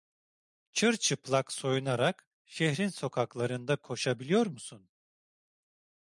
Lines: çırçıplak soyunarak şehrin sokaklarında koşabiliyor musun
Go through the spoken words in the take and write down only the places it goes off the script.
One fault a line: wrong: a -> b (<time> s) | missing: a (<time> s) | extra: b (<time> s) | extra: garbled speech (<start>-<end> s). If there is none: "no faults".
no faults